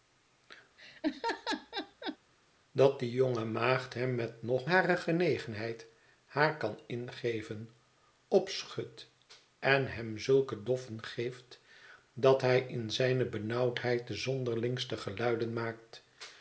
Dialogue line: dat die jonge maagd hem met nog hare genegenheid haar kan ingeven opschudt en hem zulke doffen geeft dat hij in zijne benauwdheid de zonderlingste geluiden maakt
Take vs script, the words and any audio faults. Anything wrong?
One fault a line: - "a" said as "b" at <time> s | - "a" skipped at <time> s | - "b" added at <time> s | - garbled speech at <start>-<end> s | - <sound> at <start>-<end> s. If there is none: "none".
- laugh at 0.8-2.2 s